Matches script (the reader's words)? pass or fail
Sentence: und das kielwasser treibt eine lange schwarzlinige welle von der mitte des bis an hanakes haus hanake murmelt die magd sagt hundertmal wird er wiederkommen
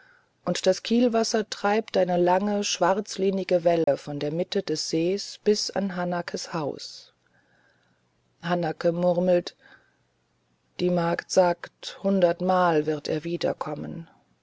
fail